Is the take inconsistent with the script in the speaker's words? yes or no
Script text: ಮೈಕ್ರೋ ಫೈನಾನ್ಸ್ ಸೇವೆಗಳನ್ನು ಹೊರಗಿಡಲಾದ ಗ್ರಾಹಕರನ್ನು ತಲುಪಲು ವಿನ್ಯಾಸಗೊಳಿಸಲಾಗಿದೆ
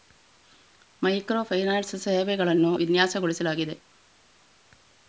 yes